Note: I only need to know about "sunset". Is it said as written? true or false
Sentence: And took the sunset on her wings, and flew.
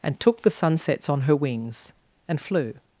false